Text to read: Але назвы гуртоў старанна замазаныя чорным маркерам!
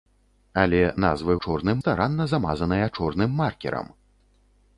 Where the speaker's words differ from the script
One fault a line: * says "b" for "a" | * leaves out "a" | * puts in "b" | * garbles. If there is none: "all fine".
* says "чорным" for "гуртоў"